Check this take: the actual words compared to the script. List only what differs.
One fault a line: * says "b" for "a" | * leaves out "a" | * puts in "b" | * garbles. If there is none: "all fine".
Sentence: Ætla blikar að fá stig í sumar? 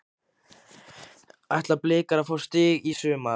all fine